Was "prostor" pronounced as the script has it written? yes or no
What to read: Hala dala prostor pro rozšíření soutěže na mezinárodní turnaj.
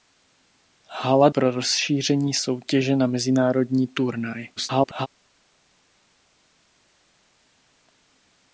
no